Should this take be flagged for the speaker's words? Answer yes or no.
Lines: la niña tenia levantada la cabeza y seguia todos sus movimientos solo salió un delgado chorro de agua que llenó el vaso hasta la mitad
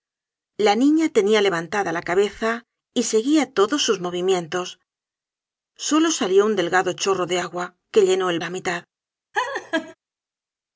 yes